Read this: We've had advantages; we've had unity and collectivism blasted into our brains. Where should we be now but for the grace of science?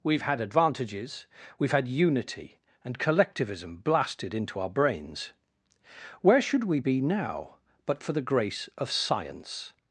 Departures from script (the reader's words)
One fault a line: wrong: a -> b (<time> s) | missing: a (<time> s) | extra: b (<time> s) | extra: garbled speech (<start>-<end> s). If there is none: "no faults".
no faults